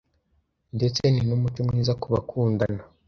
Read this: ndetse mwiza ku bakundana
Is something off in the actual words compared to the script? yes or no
yes